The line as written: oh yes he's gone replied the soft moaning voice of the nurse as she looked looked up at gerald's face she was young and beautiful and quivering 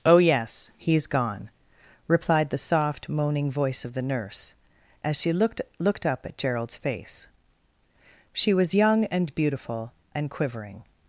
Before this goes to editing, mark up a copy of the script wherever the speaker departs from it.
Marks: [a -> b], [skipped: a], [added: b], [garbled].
oh yes he's gone replied the soft moaning voice of the nurse as she looked looked up at gerald's face she was young and beautiful and quivering